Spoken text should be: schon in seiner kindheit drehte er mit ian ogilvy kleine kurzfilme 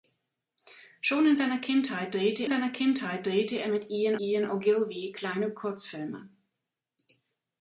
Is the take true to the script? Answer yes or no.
no